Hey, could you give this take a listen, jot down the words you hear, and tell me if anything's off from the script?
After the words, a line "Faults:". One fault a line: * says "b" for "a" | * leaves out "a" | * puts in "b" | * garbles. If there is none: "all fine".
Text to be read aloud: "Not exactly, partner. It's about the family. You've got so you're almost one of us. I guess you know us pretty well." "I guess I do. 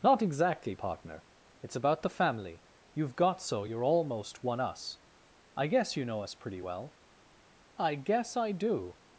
"Not exactly, partner. It's about the family. You've got so you're almost one us. I guess you know us pretty well." "I guess I do.
Faults:
* leaves out "of"